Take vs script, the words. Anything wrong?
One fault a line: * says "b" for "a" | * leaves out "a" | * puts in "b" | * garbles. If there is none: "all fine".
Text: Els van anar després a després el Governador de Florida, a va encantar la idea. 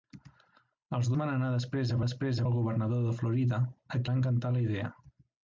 all fine